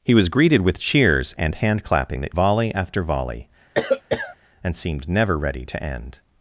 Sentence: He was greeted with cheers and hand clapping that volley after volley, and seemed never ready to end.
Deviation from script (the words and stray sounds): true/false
true